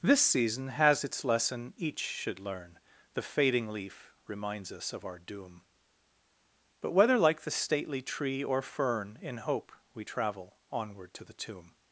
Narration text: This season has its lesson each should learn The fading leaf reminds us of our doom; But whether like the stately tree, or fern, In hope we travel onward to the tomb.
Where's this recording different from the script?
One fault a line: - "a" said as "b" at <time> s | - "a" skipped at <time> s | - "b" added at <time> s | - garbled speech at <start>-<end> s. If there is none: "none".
none